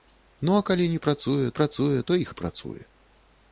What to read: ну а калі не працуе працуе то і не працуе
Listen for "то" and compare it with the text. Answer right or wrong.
right